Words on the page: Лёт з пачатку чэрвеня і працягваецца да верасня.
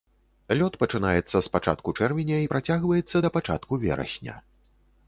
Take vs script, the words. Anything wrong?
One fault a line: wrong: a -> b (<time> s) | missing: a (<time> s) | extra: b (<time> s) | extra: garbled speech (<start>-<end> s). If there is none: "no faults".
extra: пачынаецца (0.8 s)
extra: пачатку (3.4 s)